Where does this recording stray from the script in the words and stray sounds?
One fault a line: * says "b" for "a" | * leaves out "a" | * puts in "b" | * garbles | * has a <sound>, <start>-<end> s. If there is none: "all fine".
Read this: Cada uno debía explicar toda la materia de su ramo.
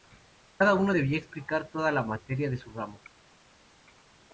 all fine